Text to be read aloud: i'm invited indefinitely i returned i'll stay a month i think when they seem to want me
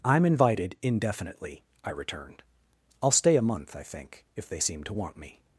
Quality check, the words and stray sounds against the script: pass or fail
fail